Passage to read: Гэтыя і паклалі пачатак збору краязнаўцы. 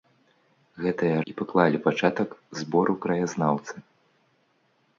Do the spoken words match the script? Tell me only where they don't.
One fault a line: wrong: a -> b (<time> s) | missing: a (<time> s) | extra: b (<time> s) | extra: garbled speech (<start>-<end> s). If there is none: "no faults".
no faults